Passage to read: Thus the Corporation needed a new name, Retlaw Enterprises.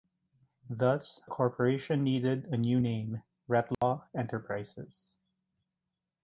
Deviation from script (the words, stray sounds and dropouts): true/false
true